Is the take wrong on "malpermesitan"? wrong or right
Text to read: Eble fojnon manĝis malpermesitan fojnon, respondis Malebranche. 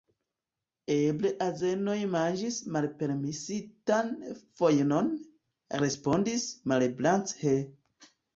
right